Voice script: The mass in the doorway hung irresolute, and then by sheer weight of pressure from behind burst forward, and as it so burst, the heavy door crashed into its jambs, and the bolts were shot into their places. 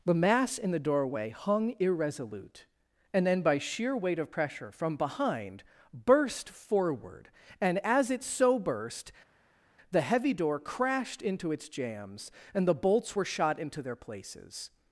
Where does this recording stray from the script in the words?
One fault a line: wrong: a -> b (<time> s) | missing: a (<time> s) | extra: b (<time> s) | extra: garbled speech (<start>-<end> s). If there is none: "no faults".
no faults